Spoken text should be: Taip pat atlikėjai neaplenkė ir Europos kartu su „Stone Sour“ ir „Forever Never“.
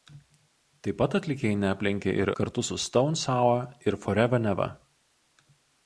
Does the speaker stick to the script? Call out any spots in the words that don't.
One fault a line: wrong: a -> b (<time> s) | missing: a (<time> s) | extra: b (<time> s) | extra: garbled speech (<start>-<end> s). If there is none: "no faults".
missing: Europos (2.3 s)